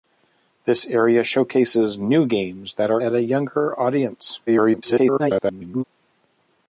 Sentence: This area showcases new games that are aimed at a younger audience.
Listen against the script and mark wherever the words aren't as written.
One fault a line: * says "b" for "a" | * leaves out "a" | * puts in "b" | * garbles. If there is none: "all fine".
* leaves out "aimed"
* garbles